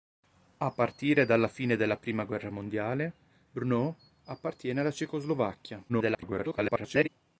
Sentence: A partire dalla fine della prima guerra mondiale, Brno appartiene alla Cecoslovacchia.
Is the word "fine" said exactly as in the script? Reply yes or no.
yes